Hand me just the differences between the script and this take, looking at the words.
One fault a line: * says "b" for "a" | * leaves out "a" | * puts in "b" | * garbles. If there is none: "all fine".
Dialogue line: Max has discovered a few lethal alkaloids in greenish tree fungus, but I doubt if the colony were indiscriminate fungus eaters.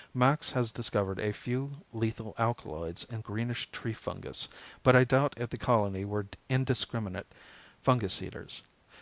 all fine